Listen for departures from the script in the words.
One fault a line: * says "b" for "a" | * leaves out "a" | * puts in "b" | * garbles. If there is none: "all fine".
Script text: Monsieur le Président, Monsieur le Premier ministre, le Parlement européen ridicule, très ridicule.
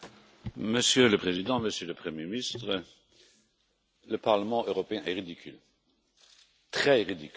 * puts in "est"